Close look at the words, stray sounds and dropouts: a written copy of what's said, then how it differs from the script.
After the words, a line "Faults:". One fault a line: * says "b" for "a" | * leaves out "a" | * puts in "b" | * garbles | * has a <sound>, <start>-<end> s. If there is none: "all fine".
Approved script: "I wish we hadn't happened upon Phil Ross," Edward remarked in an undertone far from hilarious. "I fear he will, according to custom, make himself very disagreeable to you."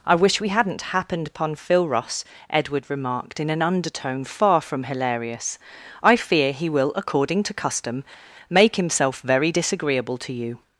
"I wish we hadn't happened upon Phil Ross," Edward remarked in an undertone far from hilarious. "I fear he will, according to custom, make himself very disagreeable to you."
Faults:
all fine